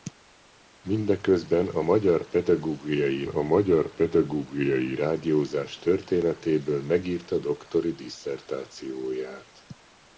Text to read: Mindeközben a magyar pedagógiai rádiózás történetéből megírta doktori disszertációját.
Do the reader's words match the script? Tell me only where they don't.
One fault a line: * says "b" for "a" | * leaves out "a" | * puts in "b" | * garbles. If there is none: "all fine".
* puts in "a magyar pedagógiai"